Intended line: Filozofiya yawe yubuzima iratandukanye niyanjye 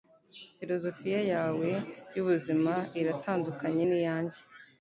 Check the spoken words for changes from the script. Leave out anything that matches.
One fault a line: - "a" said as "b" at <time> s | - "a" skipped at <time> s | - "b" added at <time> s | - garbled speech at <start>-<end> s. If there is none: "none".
none